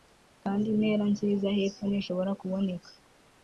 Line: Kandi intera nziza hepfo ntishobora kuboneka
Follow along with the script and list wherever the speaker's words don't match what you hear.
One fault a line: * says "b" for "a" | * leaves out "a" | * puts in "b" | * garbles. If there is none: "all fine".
all fine